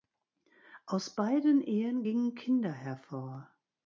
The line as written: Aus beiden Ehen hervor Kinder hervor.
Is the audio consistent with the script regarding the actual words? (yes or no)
no